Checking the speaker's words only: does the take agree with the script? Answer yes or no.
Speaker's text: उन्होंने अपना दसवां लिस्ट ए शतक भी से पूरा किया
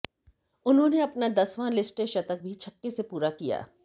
no